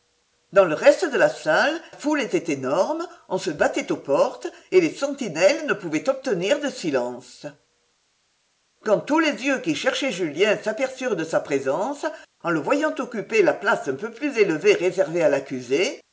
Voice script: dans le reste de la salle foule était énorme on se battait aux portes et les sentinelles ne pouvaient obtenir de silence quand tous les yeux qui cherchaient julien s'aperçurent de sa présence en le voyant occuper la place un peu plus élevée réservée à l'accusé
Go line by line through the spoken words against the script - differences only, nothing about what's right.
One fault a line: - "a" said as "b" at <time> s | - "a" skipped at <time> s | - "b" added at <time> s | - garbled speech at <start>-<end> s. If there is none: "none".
none